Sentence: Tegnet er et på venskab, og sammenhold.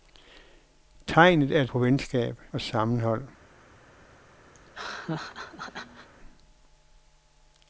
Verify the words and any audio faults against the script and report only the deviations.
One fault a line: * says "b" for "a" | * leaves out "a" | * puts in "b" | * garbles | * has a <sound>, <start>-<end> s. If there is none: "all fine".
* has a laugh, 4.5-6.1 s